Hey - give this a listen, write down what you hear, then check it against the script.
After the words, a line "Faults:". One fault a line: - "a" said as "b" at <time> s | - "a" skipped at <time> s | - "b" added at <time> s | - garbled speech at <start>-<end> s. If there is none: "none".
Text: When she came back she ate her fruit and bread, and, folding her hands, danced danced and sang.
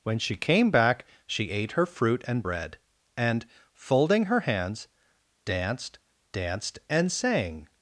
When she came back she ate her fruit and bread, and, folding her hands, danced danced and sang.
Faults:
none